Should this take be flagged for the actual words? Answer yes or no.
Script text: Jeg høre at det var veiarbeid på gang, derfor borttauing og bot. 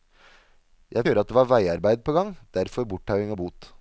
no